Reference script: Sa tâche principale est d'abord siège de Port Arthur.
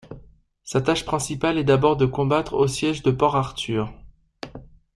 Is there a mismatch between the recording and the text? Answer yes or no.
yes